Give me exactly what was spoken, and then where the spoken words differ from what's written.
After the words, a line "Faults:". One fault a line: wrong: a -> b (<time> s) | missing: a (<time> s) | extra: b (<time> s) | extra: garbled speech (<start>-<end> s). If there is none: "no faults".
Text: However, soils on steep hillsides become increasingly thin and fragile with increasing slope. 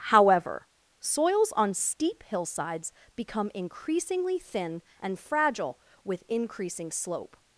However, soils on steep hillsides become increasingly thin and fragile with increasing slope.
Faults:
no faults